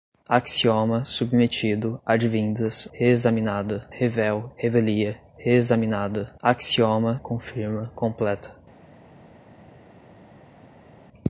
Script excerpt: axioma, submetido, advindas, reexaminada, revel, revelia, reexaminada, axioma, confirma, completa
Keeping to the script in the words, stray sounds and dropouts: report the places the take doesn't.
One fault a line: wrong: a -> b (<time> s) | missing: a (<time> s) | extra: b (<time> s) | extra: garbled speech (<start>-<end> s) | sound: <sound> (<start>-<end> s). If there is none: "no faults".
no faults